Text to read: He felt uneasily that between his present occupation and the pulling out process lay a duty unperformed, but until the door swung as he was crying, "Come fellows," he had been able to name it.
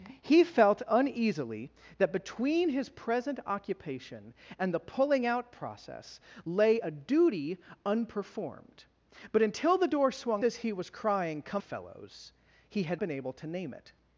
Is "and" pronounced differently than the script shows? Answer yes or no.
no